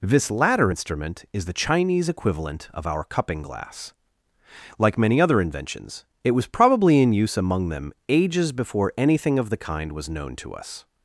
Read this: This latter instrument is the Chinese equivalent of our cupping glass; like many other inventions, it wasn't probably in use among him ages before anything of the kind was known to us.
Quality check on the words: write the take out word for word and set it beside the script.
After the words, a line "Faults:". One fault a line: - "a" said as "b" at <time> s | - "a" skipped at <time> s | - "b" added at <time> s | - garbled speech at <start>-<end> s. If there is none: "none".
This latter instrument is the Chinese equivalent of our cupping glass; like many other inventions, it was probably in use among them ages before anything of the kind was known to us.
Faults:
- "wasn't" said as "was" at 6.3 s
- "him" said as "them" at 7.7 s